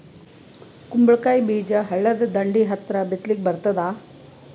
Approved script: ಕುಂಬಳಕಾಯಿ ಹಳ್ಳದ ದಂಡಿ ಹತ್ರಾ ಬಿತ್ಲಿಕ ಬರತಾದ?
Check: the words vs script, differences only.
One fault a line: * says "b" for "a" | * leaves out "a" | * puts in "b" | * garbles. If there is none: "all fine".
* puts in "ಬೀಜ"